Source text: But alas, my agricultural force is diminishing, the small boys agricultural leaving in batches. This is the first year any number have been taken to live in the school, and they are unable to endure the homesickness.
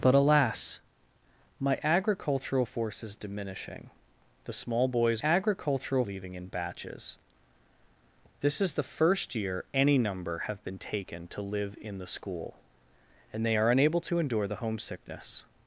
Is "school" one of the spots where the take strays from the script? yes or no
no